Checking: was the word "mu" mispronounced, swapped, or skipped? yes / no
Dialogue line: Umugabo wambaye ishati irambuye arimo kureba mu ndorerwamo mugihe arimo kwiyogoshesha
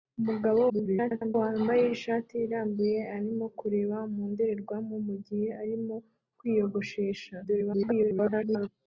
no